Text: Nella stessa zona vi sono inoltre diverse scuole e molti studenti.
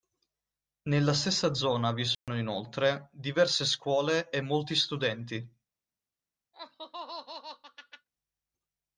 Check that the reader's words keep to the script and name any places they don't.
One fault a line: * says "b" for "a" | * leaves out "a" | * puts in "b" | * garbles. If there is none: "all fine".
all fine